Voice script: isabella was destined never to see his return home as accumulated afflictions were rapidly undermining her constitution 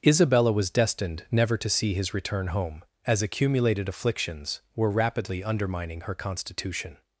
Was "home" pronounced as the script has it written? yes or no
yes